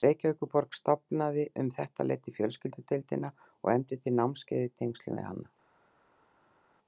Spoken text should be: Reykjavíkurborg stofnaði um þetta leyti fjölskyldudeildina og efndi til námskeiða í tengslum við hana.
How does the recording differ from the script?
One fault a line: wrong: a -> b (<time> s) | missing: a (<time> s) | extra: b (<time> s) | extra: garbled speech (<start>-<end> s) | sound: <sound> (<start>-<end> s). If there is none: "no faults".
no faults